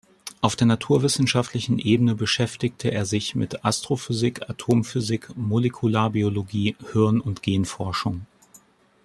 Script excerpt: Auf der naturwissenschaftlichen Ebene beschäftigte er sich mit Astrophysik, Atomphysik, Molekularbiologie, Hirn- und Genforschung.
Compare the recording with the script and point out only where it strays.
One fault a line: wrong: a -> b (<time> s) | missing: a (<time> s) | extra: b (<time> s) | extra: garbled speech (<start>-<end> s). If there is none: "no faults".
no faults